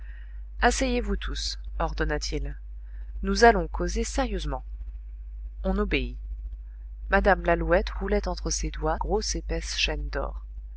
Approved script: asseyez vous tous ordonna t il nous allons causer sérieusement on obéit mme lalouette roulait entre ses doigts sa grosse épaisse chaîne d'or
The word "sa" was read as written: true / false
false